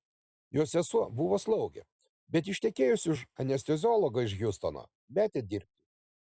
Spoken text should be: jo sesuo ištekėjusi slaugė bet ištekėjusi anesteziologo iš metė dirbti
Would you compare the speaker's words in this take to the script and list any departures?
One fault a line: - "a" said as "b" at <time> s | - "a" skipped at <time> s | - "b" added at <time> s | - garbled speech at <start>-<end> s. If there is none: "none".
- "ištekėjusi" said as "buvo" at 1.2 s
- "už" added at 3.1 s
- "hjustono" added at 4.4 s